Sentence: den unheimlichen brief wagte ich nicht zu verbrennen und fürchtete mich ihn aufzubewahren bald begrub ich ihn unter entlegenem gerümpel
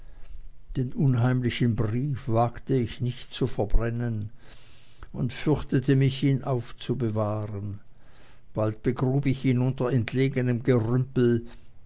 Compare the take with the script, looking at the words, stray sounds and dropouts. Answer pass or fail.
pass